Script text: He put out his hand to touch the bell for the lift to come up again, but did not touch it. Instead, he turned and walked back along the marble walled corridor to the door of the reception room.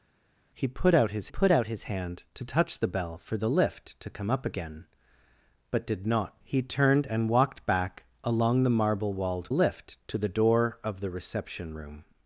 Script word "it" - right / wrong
wrong